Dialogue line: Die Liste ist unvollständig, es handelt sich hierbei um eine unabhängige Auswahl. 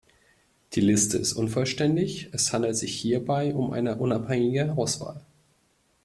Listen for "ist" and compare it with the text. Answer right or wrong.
right